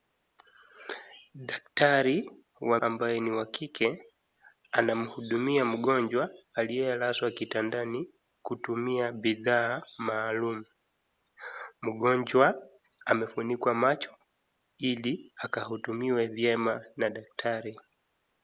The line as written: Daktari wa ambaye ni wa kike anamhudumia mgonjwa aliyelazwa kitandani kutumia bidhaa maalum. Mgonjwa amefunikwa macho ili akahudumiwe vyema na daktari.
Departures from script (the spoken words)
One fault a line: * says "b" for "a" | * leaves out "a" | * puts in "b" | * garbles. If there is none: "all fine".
all fine